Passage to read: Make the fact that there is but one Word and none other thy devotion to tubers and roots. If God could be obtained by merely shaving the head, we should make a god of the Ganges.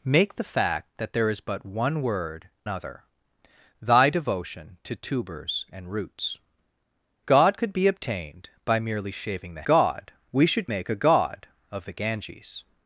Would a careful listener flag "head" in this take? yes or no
yes